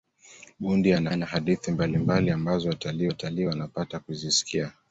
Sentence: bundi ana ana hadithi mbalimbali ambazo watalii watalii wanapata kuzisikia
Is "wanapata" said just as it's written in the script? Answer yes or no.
yes